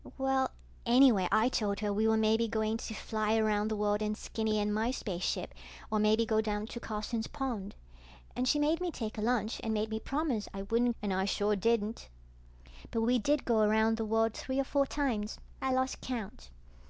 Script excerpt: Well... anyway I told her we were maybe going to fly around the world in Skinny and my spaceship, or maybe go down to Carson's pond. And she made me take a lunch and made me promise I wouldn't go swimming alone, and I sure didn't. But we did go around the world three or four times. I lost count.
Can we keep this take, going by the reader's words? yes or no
no